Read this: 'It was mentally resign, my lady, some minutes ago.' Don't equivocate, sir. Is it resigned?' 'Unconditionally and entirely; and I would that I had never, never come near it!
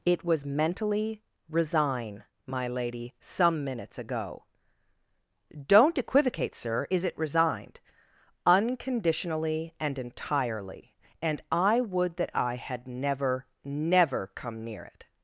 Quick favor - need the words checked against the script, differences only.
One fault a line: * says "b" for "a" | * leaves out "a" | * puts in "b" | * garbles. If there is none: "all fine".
all fine